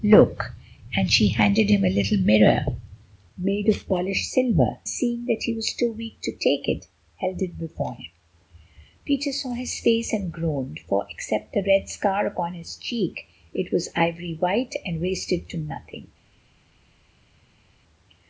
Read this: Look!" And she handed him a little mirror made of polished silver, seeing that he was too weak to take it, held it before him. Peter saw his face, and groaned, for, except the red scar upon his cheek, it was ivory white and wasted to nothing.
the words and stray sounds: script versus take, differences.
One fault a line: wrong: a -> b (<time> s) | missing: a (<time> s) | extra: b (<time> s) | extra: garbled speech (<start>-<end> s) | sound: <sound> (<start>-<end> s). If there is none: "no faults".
no faults